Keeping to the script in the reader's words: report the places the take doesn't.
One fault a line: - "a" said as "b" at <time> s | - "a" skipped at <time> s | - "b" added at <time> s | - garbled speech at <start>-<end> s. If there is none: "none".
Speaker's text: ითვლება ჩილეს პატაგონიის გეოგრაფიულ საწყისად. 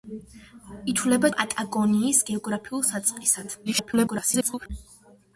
- "ჩილეს" skipped at 1.3 s
- garbled speech at 3.7-4.7 s